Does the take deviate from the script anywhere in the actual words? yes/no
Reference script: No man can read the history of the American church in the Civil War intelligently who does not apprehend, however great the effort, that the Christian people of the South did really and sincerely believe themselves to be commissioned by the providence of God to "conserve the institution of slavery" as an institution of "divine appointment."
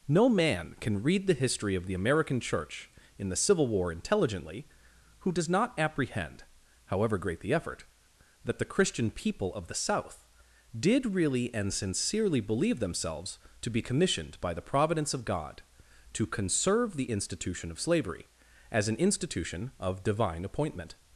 no